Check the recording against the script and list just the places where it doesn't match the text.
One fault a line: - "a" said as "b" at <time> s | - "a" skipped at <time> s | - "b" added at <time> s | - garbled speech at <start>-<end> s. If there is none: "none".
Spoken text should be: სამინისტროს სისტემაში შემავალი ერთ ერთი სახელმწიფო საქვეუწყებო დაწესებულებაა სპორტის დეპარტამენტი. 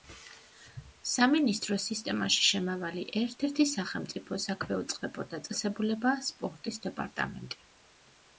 none